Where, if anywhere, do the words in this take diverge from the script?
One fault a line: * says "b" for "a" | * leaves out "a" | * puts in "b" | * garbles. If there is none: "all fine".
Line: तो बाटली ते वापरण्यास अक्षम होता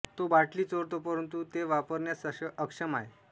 * puts in "चोरतो परंतु"
* says "आहे" for "होता"